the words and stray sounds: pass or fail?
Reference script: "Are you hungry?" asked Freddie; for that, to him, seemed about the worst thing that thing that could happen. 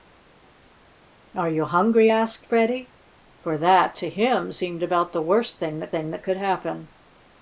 pass